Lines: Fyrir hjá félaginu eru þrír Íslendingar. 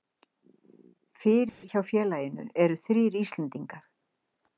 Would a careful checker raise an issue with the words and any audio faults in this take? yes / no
yes